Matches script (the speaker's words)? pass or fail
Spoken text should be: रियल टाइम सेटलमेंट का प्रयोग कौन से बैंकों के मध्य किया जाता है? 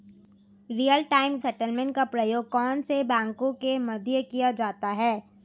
pass